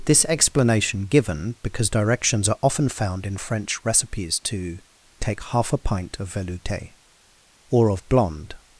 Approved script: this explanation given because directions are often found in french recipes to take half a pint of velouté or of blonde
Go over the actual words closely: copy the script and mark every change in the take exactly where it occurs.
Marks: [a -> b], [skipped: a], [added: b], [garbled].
this explanation given because directions are often found in french recipes to take half a pint of velouté or of blonde